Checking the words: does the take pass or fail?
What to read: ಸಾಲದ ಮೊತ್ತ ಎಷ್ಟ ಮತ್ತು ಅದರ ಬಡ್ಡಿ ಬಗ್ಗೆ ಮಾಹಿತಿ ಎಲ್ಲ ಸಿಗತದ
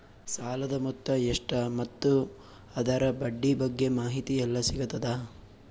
pass